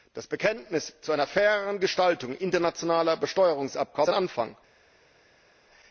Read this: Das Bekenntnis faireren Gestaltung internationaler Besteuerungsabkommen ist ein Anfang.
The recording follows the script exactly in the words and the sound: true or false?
false